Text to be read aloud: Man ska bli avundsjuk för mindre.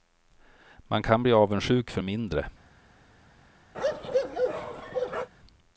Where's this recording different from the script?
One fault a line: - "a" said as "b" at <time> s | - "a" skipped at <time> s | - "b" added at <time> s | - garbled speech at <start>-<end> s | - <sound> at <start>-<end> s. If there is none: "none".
- "ska" said as "kan" at 1.0 s
- bark at 3.7-5.3 s